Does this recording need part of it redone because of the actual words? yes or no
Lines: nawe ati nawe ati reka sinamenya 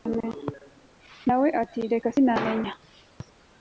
yes